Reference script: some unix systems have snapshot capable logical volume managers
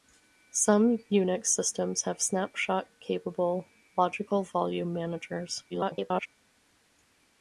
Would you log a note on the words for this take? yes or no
yes